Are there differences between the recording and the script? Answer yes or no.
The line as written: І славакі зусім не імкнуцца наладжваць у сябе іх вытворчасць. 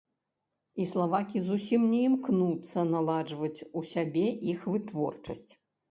no